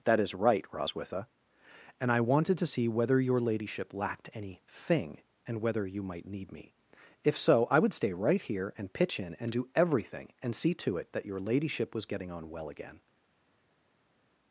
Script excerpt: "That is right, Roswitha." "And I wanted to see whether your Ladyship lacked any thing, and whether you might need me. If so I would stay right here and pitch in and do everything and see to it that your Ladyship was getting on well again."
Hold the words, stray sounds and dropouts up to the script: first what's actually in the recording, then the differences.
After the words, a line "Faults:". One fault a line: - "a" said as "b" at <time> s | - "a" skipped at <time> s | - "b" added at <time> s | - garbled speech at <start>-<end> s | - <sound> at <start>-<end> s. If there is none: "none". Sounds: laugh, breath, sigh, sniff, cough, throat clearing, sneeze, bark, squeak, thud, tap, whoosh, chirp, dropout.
"That is right, Roswitha." "And I wanted to see whether your Ladyship lacked any thing, and whether you might need me. If so I would stay right here and pitch in and do everything and see to it that your Ladyship was getting on well again."
Faults:
none